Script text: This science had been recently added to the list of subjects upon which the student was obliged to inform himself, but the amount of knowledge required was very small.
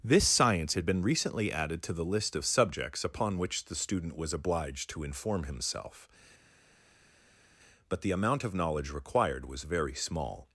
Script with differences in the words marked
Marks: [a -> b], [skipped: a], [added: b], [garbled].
This science had been recently added to the list of subjects upon which the student was obliged to inform himself, but the amount of knowledge required was very small.